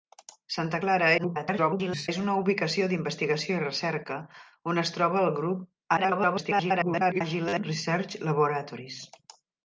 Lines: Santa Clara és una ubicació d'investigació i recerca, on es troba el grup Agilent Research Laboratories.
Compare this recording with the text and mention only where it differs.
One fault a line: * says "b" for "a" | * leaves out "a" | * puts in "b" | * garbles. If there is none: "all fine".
* garbles
* garbles